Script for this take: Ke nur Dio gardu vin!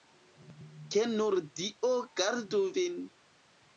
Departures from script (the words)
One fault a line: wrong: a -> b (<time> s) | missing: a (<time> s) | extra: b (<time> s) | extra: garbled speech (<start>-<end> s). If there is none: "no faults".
no faults